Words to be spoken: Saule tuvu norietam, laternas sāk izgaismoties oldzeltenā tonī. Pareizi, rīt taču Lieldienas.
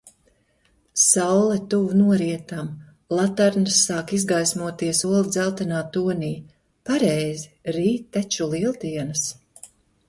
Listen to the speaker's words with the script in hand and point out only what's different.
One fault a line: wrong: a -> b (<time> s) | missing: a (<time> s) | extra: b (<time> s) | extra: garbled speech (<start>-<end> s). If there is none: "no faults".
no faults